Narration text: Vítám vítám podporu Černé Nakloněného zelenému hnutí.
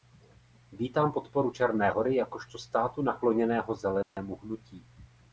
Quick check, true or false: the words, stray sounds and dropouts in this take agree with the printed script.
false